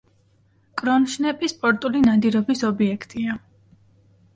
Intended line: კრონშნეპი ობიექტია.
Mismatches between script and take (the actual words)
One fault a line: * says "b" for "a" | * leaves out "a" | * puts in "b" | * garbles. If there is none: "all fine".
* puts in "სპორტული ნადირობის"